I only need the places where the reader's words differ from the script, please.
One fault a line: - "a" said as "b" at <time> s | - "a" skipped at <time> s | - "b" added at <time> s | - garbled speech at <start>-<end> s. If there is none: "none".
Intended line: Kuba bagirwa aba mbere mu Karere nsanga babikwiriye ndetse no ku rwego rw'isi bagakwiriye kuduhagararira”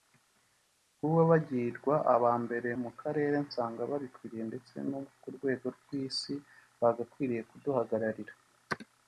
none